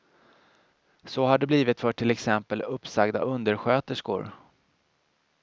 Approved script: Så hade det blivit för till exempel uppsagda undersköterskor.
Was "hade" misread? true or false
true